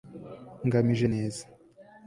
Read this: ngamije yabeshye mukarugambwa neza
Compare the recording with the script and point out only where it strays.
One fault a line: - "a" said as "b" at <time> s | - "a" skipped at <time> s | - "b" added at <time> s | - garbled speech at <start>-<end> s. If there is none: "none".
- "yabeshye mukarugambwa" skipped at 1.1 s